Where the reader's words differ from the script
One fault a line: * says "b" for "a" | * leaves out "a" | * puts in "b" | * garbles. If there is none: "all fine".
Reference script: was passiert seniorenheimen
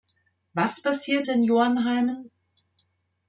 all fine